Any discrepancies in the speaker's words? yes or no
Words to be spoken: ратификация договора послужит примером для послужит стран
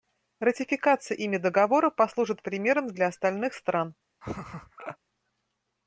yes